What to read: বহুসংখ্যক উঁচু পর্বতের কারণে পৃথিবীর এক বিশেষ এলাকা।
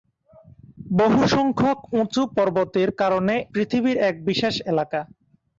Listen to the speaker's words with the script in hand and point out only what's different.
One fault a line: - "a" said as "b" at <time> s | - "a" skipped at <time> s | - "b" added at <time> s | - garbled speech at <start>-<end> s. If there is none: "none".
none